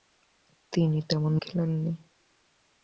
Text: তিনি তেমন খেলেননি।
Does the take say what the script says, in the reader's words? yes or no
yes